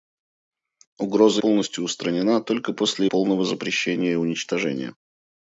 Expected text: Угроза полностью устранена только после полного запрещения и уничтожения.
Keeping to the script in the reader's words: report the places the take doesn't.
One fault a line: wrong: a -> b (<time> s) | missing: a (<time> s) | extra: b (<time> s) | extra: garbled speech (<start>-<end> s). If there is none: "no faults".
no faults